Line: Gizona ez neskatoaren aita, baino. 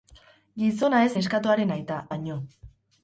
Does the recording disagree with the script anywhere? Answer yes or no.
no